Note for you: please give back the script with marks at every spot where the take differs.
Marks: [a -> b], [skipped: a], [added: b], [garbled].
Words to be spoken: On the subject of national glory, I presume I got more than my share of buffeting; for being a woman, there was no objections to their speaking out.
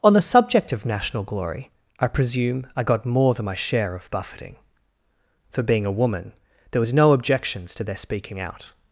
On the subject of national glory, I presume I got more than my share of buffeting; for being a woman, there was no objections to their speaking out.